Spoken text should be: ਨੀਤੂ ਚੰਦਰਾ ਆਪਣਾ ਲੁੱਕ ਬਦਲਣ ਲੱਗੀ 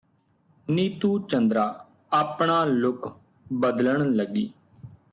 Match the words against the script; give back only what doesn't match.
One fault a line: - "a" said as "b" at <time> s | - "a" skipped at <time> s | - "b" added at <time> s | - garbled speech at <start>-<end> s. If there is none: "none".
none